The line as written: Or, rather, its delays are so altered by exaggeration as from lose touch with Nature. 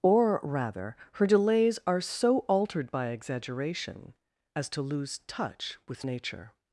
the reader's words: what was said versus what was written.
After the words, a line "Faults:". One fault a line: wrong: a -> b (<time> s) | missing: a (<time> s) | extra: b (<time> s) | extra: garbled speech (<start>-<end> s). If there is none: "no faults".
Or, rather, her delays are so altered by exaggeration as to lose touch with Nature.
Faults:
wrong: its -> her (1.1 s)
wrong: from -> to (4.7 s)